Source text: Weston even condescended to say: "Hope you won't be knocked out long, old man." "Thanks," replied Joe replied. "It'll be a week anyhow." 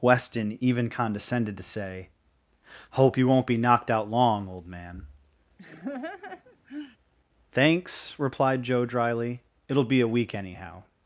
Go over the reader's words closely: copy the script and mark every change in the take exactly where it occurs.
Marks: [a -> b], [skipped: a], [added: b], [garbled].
Weston even condescended to say: "Hope you won't be knocked out long, old man." "Thanks," replied Joe [replied. -> dryly] "It'll be a week anyhow."